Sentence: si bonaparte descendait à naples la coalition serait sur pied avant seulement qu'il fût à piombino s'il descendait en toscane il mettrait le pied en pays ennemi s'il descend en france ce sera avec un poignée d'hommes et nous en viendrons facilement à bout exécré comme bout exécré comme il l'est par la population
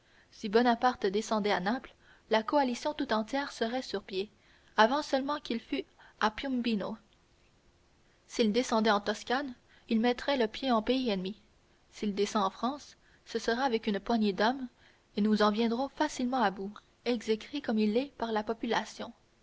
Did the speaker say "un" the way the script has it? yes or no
no